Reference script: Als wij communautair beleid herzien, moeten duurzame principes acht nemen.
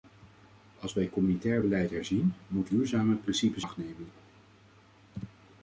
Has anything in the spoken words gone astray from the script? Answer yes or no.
no